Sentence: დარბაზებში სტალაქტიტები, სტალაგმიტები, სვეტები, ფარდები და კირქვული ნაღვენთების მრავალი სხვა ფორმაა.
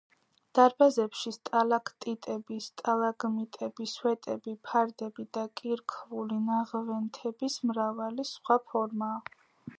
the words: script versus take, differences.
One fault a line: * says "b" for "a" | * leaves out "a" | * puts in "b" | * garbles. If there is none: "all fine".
all fine